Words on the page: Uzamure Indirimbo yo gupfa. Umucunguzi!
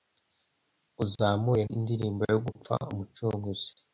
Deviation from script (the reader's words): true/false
false